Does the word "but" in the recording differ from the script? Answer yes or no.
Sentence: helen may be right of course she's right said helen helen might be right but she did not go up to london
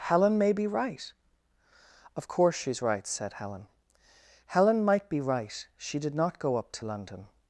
yes